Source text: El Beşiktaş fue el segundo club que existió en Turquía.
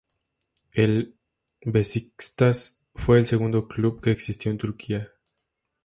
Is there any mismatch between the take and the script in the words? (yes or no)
no